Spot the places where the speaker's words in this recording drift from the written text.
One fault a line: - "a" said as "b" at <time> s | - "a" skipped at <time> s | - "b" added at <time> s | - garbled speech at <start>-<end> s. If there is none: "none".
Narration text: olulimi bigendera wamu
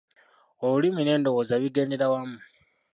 - "n'endowooza" added at 1.0 s